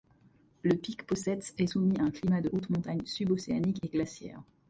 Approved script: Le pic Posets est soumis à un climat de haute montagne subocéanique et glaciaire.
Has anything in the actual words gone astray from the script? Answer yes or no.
no